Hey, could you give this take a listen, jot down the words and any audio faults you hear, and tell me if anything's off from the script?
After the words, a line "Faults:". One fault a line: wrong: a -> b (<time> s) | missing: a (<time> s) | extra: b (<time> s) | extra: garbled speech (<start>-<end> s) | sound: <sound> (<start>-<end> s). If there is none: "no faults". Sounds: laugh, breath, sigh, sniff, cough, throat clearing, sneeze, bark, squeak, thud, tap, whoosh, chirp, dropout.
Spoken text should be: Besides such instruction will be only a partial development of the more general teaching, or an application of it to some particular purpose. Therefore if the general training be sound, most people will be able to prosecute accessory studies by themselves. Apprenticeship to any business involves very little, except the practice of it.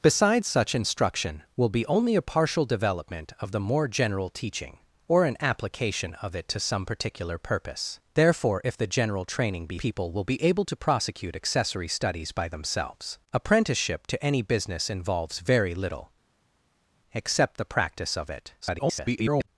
Besides such instruction will be only a partial development of the more general teaching, or an application of it to some particular purpose. Therefore if the general training be people will be able to prosecute accessory studies by themselves. Apprenticeship to any business involves very little, except the practice of it. [garbled]
Faults:
missing: sound most (9.8 s)
extra: garbled speech (18.6-19.5 s)